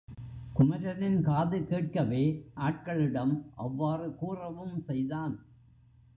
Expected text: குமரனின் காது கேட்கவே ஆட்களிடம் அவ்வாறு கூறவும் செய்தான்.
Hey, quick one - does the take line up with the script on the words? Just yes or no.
yes